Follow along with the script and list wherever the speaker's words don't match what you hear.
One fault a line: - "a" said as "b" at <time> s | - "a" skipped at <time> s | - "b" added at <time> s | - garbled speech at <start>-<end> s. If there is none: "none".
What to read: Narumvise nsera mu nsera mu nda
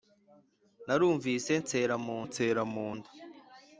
none